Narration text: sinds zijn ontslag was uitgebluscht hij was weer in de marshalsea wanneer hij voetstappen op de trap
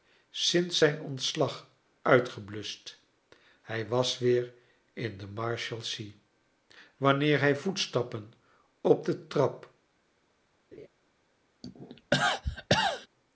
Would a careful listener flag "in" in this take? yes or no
no